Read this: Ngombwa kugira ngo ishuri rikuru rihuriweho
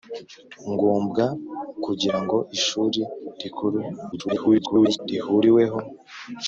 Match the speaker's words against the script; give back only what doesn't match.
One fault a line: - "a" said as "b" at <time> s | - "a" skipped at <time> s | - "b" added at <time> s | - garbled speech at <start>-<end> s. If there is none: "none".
- garbled speech at 4.1-5.0 s